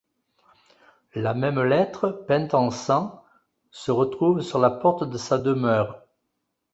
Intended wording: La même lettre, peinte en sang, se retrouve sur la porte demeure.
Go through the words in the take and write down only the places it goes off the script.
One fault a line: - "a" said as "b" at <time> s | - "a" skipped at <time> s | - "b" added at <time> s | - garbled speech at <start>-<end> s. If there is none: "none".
- "de sa" added at 5.0 s